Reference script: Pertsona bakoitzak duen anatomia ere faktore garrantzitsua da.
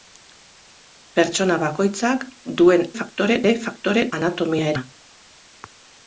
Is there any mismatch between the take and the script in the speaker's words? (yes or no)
yes